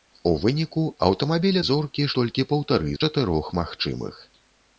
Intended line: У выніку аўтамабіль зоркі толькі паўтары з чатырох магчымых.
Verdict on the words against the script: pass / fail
pass